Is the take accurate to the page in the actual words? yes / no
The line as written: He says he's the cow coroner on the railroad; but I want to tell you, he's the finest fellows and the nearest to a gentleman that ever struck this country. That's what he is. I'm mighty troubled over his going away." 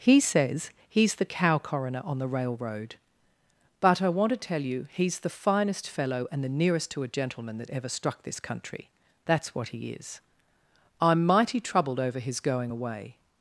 no